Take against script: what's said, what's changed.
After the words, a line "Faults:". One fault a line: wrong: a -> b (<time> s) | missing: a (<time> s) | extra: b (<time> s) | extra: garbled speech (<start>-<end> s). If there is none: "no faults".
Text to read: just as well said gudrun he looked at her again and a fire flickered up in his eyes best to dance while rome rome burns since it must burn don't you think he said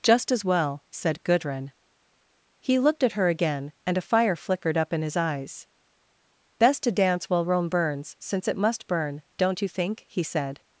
just as well said gudrun he looked at her again and a fire flickered up in his eyes best to dance while rome burns since it must burn don't you think he said
Faults:
missing: rome (7.7 s)